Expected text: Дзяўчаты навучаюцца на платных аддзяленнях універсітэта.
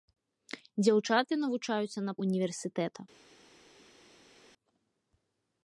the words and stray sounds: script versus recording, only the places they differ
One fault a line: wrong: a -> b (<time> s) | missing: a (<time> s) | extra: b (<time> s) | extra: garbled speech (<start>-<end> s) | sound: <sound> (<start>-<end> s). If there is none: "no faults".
missing: платных аддзяленнях (2.1 s)